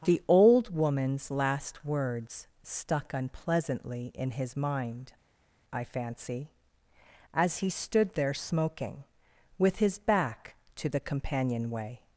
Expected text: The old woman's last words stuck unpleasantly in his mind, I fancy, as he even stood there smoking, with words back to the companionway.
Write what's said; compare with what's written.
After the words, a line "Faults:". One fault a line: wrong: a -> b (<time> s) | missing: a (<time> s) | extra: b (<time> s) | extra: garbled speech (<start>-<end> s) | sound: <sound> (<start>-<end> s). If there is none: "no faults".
The old woman's last words stuck unpleasantly in his mind, I fancy, as he stood there smoking, with his back to the companionway.
Faults:
missing: even (7.7 s)
wrong: words -> his (9.8 s)